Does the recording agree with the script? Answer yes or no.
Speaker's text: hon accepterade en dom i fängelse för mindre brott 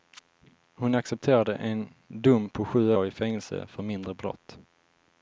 no